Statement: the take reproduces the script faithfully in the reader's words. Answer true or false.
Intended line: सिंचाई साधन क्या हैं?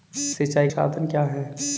true